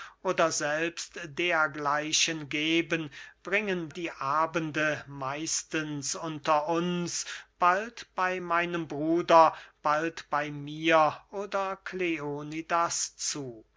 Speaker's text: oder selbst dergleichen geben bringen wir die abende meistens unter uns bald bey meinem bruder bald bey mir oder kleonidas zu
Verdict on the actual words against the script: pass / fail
fail